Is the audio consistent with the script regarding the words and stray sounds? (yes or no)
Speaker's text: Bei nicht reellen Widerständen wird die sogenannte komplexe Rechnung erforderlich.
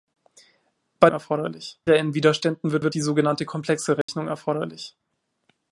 no